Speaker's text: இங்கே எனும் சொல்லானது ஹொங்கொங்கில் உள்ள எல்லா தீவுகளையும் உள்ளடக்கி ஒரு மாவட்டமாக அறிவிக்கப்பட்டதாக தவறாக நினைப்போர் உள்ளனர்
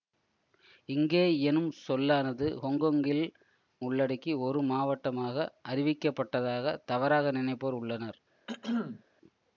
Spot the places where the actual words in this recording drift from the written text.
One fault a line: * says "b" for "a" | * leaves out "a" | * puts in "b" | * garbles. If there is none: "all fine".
* leaves out "உள்ள எல்லா தீவுகளையும்"